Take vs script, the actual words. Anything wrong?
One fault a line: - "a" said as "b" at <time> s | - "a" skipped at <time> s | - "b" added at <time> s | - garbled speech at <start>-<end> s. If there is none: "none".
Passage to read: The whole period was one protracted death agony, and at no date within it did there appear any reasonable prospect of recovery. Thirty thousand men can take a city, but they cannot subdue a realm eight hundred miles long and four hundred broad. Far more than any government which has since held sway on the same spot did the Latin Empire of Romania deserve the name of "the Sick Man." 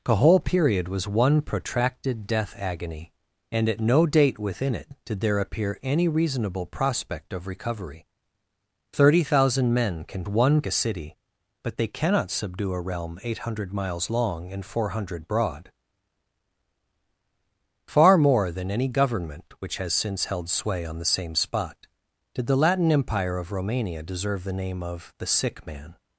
- "take" said as "one" at 10.3 s